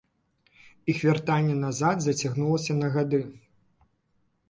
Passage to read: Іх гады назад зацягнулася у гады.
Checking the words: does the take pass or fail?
fail